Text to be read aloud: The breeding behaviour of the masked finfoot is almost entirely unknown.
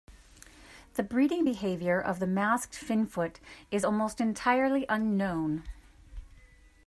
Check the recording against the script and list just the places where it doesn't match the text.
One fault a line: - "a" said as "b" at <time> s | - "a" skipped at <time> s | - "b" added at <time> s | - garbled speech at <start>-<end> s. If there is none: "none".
none